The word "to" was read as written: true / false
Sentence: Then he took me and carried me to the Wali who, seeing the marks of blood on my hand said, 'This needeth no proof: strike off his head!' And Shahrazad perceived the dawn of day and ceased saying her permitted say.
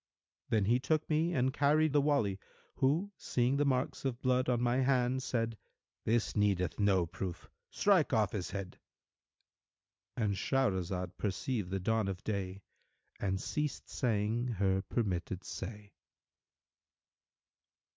false